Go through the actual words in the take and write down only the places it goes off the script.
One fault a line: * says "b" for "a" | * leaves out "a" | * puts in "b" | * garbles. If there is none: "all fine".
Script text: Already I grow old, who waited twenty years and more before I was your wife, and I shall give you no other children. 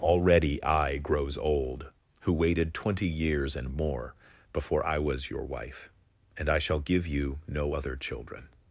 * says "grows" for "grow"